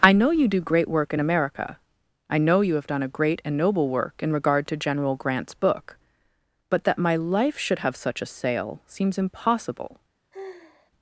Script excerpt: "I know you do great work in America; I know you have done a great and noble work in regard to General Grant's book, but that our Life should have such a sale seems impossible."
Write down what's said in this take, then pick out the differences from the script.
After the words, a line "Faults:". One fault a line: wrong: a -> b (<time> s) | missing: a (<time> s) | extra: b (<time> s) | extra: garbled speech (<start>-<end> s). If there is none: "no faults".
"I know you do great work in America; I know you have done a great and noble work in regard to General Grant's book, but that my Life should have such a sale seems impossible."
Faults:
wrong: our -> my (7.0 s)